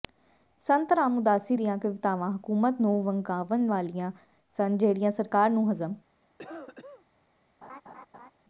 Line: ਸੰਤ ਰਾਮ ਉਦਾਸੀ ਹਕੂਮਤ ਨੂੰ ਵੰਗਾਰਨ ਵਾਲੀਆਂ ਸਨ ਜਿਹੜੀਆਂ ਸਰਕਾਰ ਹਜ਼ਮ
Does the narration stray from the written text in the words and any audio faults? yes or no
yes